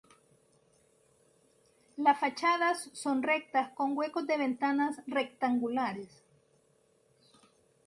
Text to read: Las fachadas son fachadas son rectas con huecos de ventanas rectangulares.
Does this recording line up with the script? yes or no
no